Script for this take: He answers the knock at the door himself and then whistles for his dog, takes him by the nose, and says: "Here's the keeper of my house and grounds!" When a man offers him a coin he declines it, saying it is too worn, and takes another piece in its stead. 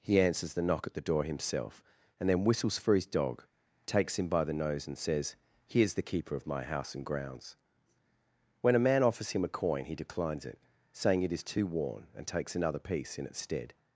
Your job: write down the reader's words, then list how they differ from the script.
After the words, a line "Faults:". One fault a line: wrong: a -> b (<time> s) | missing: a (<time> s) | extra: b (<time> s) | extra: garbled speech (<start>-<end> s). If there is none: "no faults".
He answers the knock at the door himself and then whistles for his dog, takes him by the nose, and says: "Here's the keeper of my house and grounds!" When a man offers him a coin he declines it, saying it is too worn, and takes another piece in its stead.
Faults:
no faults